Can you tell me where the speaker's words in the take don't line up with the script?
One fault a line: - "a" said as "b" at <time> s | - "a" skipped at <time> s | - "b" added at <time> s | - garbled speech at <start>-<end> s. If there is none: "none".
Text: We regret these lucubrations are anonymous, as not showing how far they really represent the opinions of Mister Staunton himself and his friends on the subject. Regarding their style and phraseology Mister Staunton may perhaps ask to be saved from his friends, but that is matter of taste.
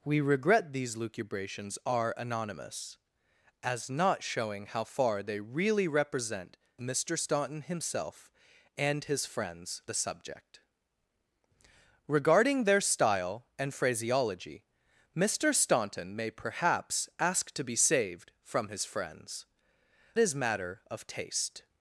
- "the opinions of" skipped at 6.6 s
- "on" skipped at 9.8 s
- "but that" skipped at 19.4 s